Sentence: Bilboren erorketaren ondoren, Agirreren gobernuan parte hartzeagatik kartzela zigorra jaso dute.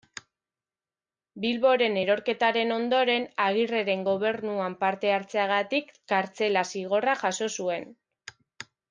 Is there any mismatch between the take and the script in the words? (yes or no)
yes